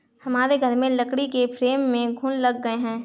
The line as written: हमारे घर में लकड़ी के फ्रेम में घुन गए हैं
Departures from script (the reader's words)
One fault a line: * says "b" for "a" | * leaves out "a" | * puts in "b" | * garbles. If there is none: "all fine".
* puts in "लग"